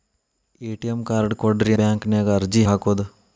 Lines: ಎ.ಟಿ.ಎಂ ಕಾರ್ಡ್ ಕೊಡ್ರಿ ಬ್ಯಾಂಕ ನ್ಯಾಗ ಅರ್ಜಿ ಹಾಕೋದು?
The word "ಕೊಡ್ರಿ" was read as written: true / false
true